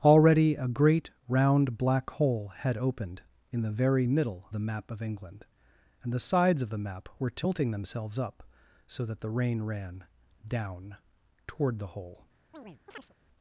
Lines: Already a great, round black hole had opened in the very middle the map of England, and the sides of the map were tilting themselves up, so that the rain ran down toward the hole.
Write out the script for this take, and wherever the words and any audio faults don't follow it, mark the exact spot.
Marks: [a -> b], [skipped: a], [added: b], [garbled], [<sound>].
Already a great, round black hole had opened in the very middle the map of England, and the sides of the map were tilting themselves up, so that the rain ran down toward the hole. [chirp]